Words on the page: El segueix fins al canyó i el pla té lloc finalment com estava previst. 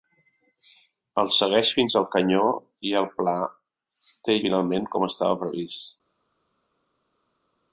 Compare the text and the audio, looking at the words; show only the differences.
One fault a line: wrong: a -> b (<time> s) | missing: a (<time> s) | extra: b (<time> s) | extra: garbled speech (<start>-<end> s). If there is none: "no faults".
missing: lloc (4.4 s)